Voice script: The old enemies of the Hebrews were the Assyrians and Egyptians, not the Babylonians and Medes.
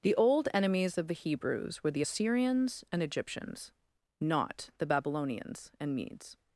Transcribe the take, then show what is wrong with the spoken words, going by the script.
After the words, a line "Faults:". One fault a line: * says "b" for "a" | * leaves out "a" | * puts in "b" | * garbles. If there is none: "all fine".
The old enemies of the Hebrews were the Assyrians and Egyptians, not the Babylonians and Medes.
Faults:
all fine